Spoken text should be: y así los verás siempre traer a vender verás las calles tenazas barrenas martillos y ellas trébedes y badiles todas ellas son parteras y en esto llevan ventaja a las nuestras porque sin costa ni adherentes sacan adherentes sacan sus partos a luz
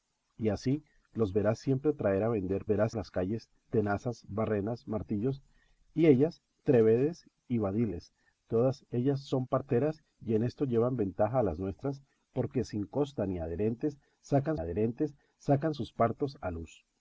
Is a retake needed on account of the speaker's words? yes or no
no